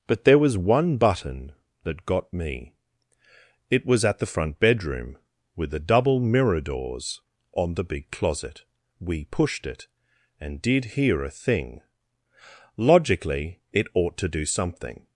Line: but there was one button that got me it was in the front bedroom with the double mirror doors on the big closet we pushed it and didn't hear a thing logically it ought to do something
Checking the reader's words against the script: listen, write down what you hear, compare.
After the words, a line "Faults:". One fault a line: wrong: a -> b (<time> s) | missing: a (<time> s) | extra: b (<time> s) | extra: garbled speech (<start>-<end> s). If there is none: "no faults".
but there was one button that got me it was at the front bedroom with the double mirror doors on the big closet we pushed it and did hear a thing logically it ought to do something
Faults:
wrong: in -> at (4.0 s)
wrong: didn't -> did (10.6 s)